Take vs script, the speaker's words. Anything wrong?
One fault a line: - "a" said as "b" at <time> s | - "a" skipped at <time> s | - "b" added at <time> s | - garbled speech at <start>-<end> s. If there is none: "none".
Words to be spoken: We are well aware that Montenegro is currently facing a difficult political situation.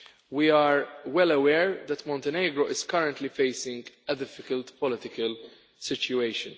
none